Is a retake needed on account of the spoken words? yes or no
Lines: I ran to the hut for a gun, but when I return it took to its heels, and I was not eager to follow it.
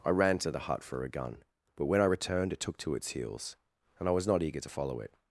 yes